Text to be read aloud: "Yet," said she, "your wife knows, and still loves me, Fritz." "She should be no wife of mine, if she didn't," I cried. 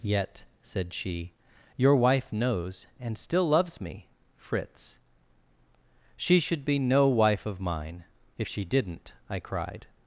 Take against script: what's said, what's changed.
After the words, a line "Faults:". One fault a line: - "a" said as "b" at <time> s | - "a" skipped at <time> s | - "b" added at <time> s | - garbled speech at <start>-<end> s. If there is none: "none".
"Yet," said she, "your wife knows, and still loves me, Fritz." "She should be no wife of mine, if she didn't," I cried.
Faults:
none